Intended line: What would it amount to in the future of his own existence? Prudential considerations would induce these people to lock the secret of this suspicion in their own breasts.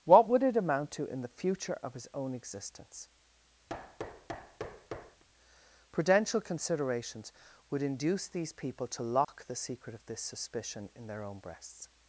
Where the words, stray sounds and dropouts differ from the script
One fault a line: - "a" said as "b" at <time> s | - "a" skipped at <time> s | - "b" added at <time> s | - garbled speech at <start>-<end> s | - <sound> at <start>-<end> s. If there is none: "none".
- thud at 3.7-5.2 s
- dropout at 9.2-9.3 s